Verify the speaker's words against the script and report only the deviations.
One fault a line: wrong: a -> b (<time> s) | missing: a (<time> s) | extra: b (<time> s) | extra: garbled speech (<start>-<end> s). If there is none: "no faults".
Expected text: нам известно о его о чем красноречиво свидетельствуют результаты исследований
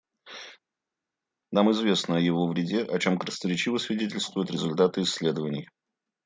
extra: вреде (2.5 s)